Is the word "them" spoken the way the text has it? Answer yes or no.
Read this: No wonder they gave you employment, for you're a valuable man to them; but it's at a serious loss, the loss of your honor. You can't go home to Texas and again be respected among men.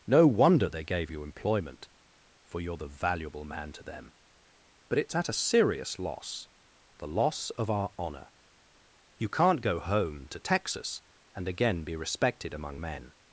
yes